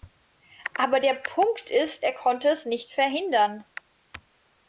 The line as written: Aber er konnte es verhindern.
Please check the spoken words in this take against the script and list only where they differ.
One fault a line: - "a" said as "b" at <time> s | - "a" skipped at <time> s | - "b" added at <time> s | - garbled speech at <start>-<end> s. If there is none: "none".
- "der Punkt ist" added at 1.0 s
- "nicht" added at 2.7 s